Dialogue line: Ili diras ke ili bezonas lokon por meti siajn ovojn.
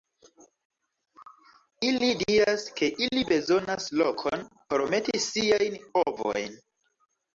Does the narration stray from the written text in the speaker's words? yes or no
no